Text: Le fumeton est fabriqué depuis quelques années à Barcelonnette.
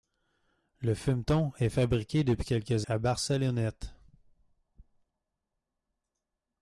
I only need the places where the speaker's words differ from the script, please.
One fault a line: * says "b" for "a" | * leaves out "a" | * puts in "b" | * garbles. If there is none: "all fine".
* leaves out "années"